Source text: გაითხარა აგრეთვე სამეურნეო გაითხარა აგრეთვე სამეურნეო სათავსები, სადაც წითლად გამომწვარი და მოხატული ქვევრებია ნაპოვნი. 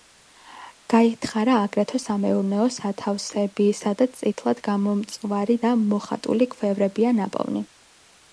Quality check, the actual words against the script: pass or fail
fail